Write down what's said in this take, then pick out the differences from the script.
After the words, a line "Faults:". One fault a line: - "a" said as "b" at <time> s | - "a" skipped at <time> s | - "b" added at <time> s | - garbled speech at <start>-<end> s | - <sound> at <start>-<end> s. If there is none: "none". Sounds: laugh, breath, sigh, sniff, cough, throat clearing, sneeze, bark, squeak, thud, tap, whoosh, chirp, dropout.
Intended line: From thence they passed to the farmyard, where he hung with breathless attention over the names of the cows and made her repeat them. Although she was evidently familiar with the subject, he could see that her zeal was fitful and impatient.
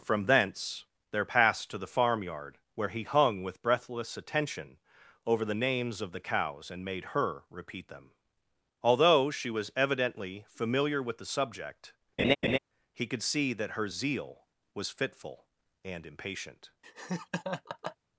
From thence there passed to the farmyard, where he hung with breathless attention over the names of the cows and made her repeat them. Although she was evidently familiar with the subject, he could see that her zeal was fitful and impatient.
Faults:
- "they" said as "there" at 1.1 s
- laugh at 12.2-12.6 s
- laugh at 16.8-18.0 s